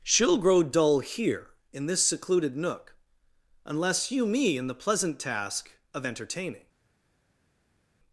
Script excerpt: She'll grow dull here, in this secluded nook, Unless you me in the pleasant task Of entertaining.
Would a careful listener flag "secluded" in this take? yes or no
no